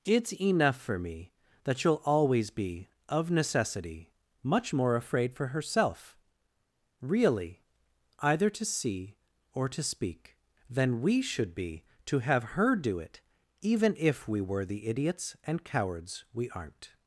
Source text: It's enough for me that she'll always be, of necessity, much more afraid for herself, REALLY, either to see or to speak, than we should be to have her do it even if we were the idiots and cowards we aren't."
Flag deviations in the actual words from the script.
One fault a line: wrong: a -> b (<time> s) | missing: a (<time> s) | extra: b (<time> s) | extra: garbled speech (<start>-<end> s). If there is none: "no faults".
no faults